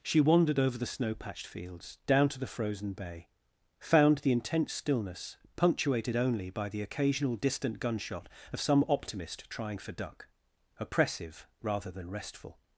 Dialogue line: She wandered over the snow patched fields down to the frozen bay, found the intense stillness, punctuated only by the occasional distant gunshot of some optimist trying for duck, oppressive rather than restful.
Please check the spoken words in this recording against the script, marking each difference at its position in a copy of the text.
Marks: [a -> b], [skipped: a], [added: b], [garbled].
She wandered over the snow patched fields down to the frozen bay, found the intense stillness, punctuated only by the occasional distant gunshot of some optimist trying for duck, oppressive rather than restful.